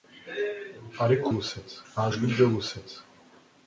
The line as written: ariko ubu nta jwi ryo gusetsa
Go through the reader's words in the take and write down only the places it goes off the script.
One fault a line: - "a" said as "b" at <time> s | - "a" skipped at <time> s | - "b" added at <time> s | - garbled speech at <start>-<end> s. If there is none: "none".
- "ubu" said as "gusetsa" at 1.4 s